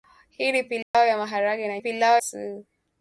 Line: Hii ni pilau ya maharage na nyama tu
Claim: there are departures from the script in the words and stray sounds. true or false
true